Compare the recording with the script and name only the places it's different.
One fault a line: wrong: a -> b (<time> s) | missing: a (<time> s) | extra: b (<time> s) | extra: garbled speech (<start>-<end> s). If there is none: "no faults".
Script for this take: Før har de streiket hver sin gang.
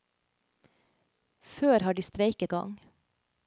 missing: hver sin (2.5 s)